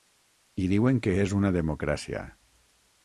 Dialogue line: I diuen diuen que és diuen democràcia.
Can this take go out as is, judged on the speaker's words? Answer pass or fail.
fail